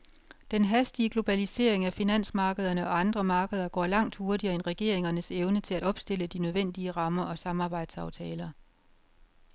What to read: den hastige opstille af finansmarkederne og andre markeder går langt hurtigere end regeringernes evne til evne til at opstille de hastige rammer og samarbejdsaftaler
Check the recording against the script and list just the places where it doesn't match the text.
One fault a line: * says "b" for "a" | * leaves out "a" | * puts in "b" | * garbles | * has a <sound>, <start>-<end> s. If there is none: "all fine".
* says "globalisering" for "opstille"
* leaves out "evne til"
* says "nødvendige" for "hastige"